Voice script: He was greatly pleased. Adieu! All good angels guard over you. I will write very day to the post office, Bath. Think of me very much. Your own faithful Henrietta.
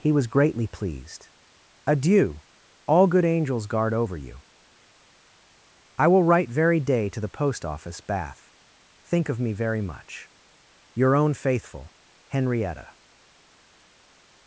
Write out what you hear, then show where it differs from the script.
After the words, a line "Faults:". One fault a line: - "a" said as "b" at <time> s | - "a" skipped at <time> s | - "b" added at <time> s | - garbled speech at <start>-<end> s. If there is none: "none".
He was greatly pleased. Adieu! All good angels guard over you. I will write very day to the post office, Bath. Think of me very much. Your own faithful Henrietta.
Faults:
none